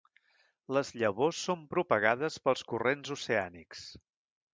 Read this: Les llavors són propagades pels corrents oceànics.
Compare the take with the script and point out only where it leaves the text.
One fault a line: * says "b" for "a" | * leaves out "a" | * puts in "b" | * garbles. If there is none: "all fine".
all fine